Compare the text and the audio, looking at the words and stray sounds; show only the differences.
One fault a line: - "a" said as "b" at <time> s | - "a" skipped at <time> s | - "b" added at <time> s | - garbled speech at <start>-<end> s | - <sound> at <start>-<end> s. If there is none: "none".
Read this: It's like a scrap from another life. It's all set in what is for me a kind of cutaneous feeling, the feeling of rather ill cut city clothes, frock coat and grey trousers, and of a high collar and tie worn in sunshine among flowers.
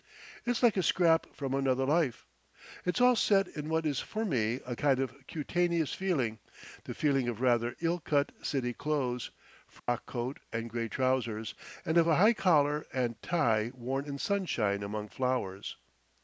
- dropout at 9.8-9.9 s